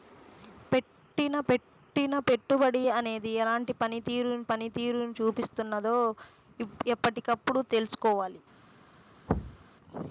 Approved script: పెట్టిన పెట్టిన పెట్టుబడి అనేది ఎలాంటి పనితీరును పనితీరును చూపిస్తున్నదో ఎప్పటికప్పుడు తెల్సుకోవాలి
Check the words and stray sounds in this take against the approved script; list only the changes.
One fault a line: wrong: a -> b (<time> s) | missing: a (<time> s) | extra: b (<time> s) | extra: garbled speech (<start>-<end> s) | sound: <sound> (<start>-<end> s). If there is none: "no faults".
sound: thud (9.3-9.7 s)